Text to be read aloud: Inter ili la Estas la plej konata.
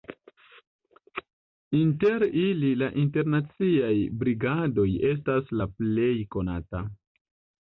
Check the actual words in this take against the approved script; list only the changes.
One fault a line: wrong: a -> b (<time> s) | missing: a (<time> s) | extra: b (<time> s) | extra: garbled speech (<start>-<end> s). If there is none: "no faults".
extra: Internaciaj Brigadoj (3.0 s)